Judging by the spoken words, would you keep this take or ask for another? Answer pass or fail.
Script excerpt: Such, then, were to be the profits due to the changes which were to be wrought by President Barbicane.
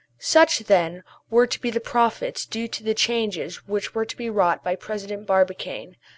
pass